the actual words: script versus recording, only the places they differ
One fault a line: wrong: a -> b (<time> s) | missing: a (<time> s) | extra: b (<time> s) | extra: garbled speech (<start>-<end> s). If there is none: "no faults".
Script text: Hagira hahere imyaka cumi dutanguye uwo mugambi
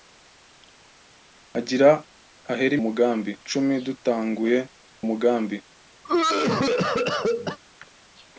wrong: imyaka -> mugambi (2.8 s)
missing: uwo (4.6 s)